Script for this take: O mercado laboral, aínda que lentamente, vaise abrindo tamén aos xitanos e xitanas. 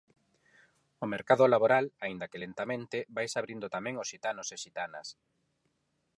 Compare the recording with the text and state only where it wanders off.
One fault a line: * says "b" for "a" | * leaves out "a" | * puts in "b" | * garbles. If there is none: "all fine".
all fine